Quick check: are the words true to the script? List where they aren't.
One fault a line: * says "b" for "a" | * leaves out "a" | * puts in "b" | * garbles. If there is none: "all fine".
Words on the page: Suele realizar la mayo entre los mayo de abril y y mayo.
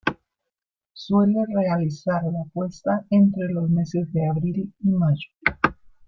* says "puesta" for "mayo"
* says "meses" for "mayo"
* leaves out "y"